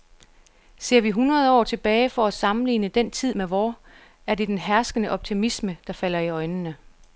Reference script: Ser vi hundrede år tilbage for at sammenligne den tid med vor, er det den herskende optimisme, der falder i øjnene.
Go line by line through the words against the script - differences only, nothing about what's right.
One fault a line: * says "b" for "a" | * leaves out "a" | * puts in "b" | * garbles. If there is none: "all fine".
all fine